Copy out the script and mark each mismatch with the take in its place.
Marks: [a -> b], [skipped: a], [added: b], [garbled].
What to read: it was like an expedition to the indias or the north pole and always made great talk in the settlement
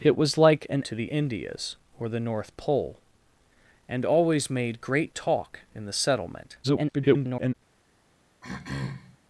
it was like an [skipped: expedition] to the indias or the north pole and always made great talk in the settlement [garbled]